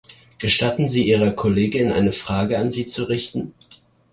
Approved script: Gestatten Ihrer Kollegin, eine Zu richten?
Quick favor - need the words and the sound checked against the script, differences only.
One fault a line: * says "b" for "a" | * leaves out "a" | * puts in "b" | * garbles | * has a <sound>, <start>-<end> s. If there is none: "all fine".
* puts in "Sie"
* puts in "Frage an Sie"